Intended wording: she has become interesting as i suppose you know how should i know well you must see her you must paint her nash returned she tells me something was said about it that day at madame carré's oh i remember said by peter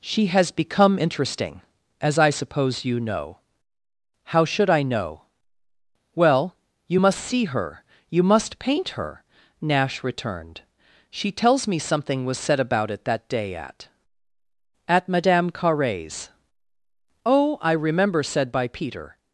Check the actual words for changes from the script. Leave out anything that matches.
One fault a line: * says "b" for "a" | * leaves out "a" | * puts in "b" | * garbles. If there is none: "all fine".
* puts in "at"